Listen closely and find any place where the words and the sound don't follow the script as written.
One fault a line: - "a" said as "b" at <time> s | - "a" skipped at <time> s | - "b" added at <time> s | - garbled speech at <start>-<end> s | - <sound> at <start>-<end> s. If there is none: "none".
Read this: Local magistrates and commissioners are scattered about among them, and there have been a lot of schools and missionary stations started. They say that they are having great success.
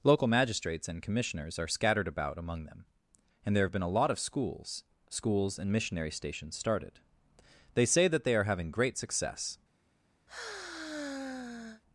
- "schools" added at 5.1 s
- sigh at 10.3-11.8 s